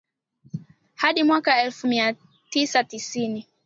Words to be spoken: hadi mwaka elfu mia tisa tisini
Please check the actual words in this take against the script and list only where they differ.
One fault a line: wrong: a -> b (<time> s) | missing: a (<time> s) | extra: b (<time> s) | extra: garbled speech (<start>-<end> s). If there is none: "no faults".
no faults